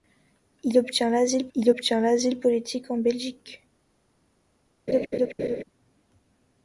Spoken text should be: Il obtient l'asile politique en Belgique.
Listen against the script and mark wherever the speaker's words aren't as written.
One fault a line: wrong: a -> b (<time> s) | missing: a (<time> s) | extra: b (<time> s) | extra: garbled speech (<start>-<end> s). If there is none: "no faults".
extra: il obtient l'asile (1.5 s)